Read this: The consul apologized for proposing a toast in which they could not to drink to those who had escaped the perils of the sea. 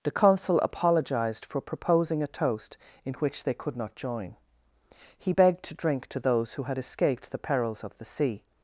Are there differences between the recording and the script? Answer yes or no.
yes